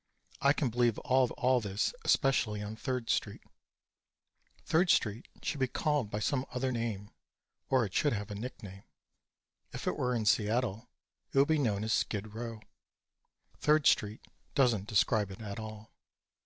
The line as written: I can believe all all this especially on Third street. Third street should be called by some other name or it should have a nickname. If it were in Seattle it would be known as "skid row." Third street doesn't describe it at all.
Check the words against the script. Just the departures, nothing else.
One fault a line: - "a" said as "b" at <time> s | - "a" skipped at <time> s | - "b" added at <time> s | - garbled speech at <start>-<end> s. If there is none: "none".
none